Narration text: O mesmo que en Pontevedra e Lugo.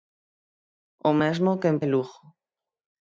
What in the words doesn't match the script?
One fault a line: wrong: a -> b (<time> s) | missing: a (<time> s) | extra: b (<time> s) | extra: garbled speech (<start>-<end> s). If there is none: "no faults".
missing: Pontevedra (1.8 s)